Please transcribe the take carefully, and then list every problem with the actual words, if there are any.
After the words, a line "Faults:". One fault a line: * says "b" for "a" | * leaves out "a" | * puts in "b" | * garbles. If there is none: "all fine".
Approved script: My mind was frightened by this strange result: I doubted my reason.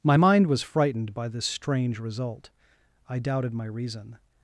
My mind was frightened by this strange result: I doubted my reason.
Faults:
all fine